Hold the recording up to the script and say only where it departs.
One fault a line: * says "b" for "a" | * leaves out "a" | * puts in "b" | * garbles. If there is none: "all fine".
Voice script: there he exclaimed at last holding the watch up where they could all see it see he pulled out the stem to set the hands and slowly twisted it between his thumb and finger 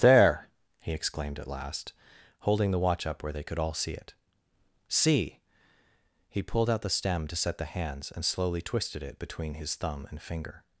all fine